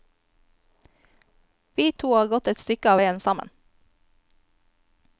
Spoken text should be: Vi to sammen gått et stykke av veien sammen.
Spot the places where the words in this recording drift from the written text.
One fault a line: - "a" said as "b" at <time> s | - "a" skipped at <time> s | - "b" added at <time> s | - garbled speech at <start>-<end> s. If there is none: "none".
- "sammen" said as "har" at 2.1 s